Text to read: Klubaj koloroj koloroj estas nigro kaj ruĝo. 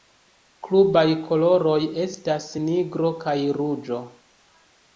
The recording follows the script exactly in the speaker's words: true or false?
false